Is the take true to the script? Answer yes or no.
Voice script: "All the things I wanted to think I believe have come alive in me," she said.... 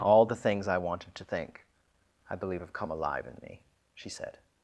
yes